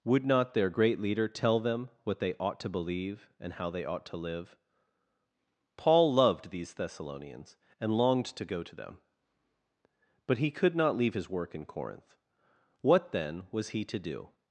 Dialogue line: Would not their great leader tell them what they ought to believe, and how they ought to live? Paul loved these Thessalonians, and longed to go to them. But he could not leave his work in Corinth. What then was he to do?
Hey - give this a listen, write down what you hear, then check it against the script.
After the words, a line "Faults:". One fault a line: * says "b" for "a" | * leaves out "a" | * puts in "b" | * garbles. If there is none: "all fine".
Would not their great leader tell them what they ought to believe, and how they ought to live? Paul loved these Thessalonians, and longed to go to them. But he could not leave his work in Corinth. What then was he to do?
Faults:
all fine